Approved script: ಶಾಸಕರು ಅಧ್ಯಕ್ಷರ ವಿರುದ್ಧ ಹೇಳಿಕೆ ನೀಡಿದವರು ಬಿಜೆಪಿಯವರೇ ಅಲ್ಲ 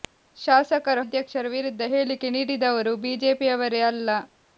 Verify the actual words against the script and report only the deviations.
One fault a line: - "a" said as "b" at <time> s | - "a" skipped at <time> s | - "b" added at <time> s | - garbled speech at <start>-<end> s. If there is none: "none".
none